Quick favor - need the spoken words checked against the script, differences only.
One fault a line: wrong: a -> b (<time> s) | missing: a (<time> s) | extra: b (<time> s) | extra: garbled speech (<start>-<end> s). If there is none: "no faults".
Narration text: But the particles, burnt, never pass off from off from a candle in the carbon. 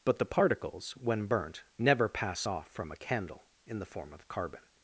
extra: when (0.9 s)
missing: off from (2.9 s)
extra: form of (3.9 s)